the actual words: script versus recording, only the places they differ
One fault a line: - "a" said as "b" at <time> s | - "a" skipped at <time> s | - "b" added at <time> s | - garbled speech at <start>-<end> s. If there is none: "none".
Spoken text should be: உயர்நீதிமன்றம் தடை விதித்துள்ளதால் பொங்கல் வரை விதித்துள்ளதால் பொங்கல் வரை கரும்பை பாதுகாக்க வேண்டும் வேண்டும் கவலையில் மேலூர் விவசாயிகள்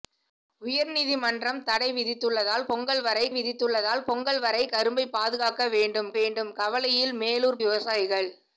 none